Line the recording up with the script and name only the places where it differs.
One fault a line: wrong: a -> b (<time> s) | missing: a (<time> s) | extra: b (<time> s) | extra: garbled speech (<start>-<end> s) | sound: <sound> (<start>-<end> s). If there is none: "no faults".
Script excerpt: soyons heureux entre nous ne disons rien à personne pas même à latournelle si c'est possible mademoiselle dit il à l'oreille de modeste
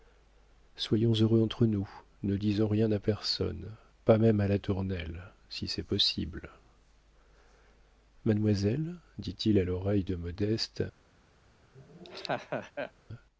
sound: laugh (11.7-12.9 s)